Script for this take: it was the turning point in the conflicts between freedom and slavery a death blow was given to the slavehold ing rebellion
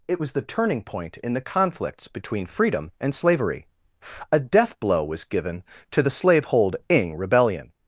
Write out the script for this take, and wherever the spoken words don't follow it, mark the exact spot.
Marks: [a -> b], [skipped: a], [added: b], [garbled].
it was the turning point in the conflicts between freedom and slavery a death blow was given to the slavehold ing rebellion